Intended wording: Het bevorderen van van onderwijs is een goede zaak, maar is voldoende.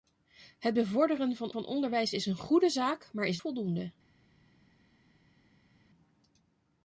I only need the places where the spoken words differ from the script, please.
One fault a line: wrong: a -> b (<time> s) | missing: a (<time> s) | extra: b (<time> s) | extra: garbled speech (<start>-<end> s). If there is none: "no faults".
no faults